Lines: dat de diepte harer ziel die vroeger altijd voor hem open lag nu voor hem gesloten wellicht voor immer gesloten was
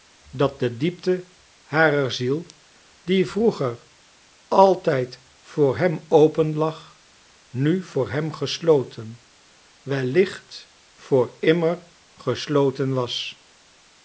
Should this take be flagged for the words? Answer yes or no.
no